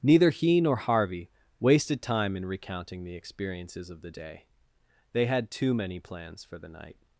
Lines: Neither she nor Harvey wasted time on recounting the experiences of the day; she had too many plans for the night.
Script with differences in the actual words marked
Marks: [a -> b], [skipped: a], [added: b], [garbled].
Neither [she -> he] nor Harvey wasted time [on -> in] recounting the experiences of the day; [she -> they] had too many plans for the night.